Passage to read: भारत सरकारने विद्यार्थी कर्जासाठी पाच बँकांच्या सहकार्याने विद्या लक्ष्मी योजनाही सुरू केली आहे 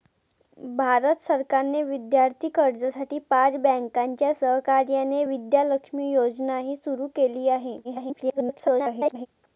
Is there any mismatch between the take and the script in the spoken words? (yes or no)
yes